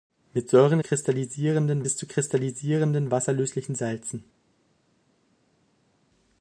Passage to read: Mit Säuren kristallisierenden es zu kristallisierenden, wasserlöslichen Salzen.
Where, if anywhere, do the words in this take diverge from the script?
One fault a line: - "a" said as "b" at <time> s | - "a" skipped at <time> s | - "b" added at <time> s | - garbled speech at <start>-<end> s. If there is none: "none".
none